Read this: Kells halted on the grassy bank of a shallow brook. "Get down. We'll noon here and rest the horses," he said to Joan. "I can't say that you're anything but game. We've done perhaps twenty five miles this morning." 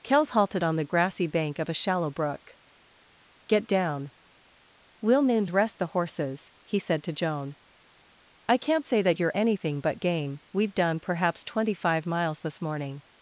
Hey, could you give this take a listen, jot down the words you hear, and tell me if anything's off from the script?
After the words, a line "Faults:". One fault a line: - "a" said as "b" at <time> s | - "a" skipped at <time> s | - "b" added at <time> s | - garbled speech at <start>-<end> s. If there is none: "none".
Kells halted on the grassy bank of a shallow brook. "Get down. We'll noon rest the horses," he said to Joan. "I can't say that you're anything but game. We've done perhaps twenty five miles this morning."
Faults:
- "here and" skipped at 5.5 s